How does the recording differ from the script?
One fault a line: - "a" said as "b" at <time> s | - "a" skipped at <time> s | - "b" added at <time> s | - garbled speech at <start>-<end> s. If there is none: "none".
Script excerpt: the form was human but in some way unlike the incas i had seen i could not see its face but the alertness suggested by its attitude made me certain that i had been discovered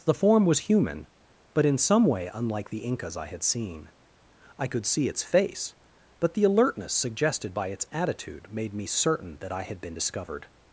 - "not" skipped at 4.8 s